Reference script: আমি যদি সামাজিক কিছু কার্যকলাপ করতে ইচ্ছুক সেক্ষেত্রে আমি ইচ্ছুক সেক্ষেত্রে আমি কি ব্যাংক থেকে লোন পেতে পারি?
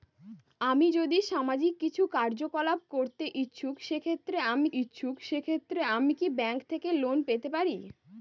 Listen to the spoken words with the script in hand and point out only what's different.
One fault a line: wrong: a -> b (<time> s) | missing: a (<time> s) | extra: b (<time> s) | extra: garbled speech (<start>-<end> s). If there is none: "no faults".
no faults